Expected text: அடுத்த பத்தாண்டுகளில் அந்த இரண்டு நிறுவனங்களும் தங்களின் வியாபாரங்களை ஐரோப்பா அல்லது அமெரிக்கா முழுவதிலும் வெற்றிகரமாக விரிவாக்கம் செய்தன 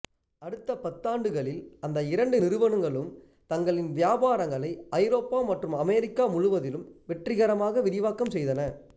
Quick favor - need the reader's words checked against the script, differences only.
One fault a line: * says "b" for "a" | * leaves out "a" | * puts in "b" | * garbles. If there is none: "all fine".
* says "மற்றும்" for "அல்லது"